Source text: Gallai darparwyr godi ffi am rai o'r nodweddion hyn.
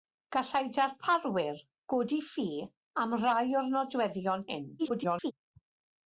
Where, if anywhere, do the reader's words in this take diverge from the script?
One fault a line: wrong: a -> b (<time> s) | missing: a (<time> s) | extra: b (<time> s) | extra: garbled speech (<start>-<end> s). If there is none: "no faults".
extra: garbled speech (4.8-5.3 s)